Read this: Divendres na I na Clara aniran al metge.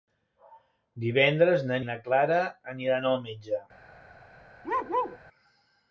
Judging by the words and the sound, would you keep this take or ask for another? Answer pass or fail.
fail